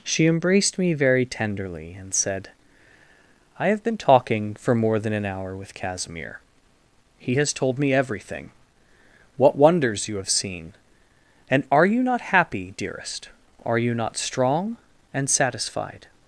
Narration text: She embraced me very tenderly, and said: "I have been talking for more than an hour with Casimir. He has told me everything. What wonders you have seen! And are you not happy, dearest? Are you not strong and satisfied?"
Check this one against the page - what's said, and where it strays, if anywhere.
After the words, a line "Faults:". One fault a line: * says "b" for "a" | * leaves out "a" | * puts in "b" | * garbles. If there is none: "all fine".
She embraced me very tenderly, and said: "I have been talking for more than an hour with Casimir. He has told me everything. What wonders you have seen! And are you not happy, dearest? Are you not strong and satisfied?"
Faults:
all fine